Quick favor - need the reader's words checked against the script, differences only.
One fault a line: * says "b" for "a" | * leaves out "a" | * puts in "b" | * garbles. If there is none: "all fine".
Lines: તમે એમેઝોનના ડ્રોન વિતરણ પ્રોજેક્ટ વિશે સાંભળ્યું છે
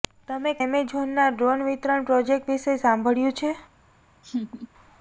all fine